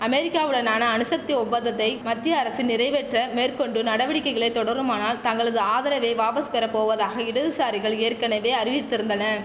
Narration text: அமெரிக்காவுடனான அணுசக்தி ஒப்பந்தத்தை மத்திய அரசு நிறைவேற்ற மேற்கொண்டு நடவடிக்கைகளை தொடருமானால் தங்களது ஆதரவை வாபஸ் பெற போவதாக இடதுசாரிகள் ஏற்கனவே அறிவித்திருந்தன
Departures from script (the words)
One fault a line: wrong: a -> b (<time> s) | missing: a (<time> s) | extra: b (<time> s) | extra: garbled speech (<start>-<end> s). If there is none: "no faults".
no faults